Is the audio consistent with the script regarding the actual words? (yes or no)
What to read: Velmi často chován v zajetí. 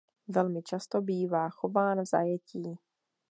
no